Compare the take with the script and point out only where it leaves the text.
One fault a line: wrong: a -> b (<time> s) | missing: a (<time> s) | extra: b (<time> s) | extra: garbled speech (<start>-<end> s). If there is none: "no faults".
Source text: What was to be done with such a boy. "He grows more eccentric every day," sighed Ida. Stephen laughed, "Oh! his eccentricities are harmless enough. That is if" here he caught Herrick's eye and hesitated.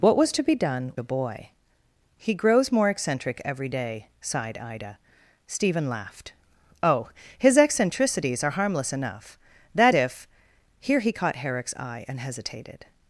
missing: with such (0.9 s)
missing: is (10.0 s)